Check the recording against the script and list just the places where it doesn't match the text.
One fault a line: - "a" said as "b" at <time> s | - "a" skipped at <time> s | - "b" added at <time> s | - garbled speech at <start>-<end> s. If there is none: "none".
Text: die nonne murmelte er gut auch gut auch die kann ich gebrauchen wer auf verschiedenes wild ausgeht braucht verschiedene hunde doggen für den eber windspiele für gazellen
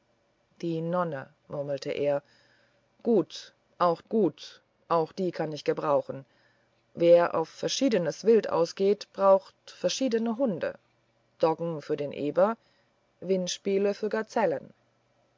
none